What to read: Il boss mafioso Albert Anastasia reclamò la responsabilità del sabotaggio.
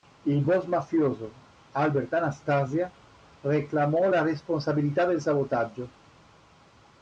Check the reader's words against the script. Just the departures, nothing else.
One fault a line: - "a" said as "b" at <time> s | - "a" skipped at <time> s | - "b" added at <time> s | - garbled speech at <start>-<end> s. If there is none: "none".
none